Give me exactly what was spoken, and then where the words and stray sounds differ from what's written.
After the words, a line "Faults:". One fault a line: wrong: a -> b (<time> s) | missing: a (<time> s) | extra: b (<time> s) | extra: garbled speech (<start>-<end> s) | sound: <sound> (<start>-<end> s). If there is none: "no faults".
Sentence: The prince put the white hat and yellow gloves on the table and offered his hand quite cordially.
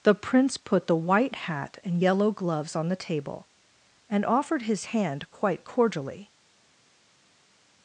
The prince put the white hat and yellow gloves on the table and offered his hand quite cordially.
Faults:
no faults